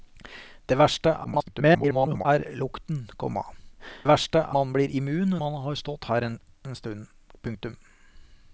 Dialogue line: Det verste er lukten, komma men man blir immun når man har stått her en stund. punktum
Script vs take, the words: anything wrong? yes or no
yes